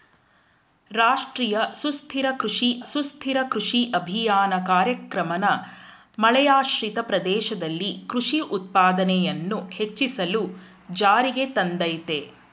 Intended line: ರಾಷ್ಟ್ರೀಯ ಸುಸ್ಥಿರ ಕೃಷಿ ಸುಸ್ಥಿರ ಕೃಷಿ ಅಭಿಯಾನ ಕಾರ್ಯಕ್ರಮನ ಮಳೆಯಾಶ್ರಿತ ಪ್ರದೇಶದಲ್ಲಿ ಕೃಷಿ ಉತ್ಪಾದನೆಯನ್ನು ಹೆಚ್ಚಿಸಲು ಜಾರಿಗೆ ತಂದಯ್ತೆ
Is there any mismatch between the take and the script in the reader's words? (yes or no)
no